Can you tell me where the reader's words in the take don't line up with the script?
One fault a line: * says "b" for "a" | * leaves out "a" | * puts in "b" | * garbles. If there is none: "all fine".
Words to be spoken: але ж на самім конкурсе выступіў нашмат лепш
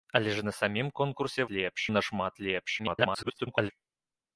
* says "лепш" for "выступіў"
* garbles